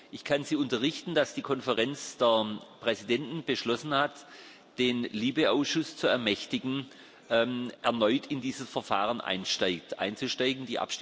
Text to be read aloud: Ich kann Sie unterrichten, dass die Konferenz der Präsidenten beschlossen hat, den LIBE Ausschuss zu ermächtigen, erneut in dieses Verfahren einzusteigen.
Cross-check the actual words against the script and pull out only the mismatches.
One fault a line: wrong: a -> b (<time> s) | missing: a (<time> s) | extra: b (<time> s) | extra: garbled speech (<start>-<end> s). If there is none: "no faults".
no faults